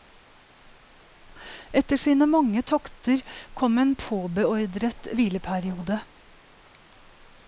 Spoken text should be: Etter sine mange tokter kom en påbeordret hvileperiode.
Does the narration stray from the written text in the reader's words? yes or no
no